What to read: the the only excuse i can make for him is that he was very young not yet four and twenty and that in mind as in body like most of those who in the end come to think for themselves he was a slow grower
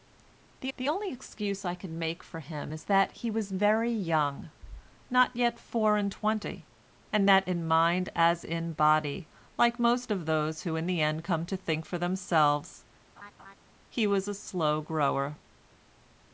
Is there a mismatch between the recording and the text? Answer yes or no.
no